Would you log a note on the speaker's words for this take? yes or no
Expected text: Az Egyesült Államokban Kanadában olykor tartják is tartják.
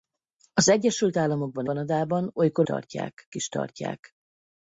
no